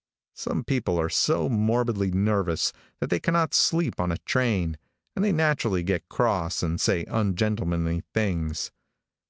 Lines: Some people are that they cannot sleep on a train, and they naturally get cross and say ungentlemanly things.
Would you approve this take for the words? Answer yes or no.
no